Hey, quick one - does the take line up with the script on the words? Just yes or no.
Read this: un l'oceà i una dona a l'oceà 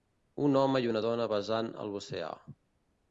no